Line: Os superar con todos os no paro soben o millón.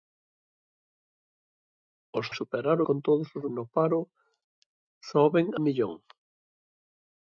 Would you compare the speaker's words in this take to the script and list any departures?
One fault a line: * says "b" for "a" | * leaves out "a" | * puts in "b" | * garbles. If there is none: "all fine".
all fine